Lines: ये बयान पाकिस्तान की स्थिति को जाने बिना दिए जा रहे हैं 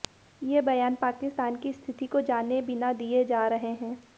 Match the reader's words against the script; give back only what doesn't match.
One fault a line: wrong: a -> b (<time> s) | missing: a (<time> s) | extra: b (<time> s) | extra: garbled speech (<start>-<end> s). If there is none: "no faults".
no faults